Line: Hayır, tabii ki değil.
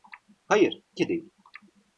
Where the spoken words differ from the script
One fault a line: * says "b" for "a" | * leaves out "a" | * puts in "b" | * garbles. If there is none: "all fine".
* leaves out "tabii"